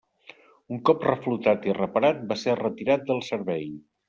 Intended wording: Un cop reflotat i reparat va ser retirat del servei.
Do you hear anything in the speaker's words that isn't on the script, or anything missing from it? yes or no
no